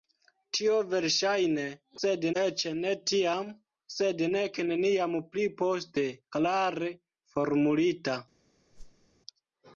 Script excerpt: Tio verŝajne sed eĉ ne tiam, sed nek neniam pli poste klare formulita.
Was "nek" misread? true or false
false